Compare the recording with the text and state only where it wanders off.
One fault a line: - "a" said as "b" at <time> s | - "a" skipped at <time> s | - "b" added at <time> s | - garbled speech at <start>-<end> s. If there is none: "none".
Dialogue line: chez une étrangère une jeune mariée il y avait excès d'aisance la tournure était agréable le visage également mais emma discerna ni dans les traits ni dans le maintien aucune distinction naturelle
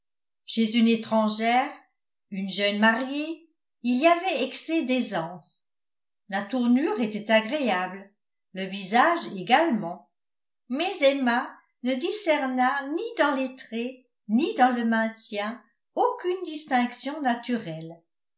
- "ne" added at 11.8 s